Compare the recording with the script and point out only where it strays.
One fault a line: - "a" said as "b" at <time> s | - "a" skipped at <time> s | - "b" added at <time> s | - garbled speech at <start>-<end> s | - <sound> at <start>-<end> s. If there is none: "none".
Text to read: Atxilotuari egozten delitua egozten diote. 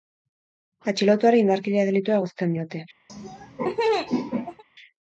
- "egozten" said as "indarkeria" at 1.4 s
- laugh at 3.1-4.6 s